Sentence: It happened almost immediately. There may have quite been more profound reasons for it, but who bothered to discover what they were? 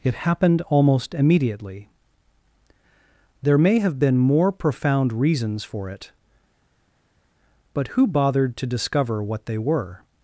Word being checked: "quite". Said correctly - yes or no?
no